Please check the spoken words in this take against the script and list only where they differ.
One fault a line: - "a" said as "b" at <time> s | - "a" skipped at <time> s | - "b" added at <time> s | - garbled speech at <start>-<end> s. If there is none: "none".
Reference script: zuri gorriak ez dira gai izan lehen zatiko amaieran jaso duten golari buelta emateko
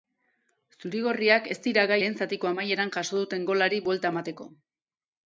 - "izan" skipped at 2.0 s